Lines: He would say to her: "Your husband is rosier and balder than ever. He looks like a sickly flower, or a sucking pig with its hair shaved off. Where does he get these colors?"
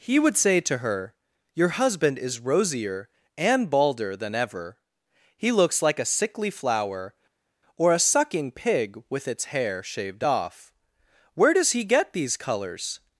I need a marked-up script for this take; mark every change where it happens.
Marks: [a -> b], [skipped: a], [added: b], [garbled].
He would say to her: "Your husband is rosier and balder than ever. He looks like a sickly flower, or a sucking pig with its hair shaved off. Where does he get these colors?"